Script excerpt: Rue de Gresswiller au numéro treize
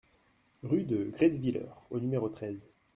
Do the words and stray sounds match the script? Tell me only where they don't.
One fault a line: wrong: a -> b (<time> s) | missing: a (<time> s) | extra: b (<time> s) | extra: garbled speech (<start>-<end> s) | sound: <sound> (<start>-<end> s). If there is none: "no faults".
no faults